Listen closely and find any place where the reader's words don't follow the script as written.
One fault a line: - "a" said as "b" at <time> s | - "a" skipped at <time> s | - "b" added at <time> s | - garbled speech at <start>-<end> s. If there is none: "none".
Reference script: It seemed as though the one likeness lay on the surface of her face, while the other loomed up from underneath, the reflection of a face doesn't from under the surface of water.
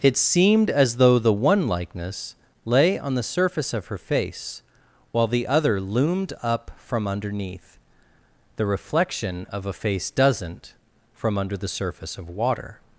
none